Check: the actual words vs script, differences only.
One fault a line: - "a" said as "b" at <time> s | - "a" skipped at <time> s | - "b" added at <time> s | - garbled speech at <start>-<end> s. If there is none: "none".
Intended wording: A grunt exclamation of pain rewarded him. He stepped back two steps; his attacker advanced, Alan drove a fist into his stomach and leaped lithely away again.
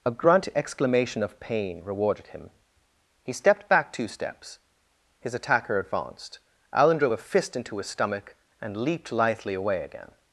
none